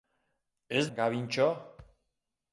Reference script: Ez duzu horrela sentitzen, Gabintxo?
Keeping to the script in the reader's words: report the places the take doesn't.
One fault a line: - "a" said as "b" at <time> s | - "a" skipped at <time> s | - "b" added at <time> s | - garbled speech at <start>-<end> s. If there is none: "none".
- "duzu horrela sentitzen" skipped at 0.8 s